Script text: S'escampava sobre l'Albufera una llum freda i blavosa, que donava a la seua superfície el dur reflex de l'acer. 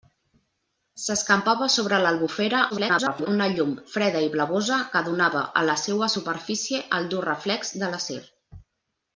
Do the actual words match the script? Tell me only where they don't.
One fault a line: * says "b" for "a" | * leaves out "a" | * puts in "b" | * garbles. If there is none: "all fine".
* garbles